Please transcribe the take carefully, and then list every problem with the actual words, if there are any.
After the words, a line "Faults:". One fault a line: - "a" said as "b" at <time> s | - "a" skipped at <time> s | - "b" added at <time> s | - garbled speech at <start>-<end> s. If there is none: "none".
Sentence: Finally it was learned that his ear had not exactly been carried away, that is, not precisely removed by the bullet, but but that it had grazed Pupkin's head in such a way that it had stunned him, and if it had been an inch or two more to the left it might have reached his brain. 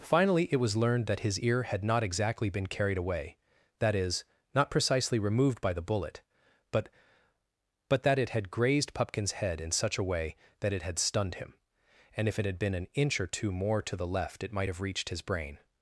Finally it was learned that his ear had not exactly been carried away, that is, not precisely removed by the bullet, but but that it had grazed Pupkin's head in such a way that it had stunned him, and if it had been an inch or two more to the left it might have reached his brain.
Faults:
none